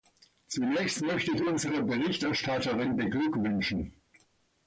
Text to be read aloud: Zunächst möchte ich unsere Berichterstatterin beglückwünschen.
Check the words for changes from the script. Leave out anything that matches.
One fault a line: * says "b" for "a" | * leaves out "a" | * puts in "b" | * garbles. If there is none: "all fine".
all fine